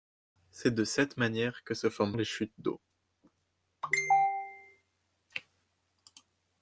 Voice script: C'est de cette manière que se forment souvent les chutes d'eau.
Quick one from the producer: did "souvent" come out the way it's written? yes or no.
no